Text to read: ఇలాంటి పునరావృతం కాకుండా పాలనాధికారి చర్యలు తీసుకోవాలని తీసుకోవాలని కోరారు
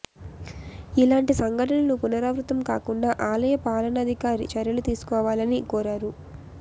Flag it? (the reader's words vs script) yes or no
yes